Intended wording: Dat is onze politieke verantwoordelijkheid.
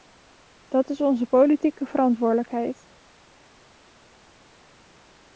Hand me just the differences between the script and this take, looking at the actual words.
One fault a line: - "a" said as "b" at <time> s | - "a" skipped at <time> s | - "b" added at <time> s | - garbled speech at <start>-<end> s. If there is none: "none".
none